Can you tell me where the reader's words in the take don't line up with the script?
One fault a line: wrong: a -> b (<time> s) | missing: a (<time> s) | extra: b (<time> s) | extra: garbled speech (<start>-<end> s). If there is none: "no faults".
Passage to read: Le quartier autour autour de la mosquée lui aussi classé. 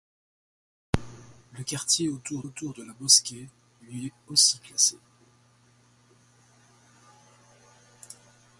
no faults